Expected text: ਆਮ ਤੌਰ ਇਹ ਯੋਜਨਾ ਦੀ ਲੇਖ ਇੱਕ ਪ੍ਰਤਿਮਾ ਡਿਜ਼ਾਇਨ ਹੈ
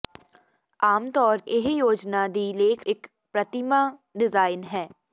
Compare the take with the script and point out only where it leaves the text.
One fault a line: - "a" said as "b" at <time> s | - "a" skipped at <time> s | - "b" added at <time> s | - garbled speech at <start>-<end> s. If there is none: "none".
none